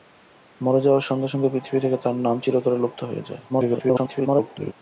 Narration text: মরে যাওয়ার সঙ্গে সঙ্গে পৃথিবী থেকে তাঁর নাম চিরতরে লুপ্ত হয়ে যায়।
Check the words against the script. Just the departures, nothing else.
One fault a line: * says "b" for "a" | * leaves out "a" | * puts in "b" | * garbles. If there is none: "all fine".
* garbles